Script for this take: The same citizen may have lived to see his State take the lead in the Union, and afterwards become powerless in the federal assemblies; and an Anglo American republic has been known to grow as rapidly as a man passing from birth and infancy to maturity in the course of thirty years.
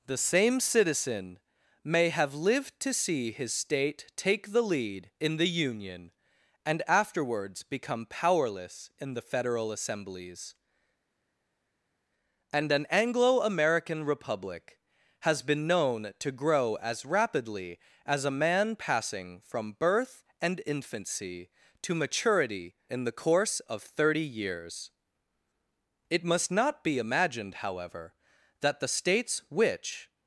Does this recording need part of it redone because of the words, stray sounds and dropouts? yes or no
yes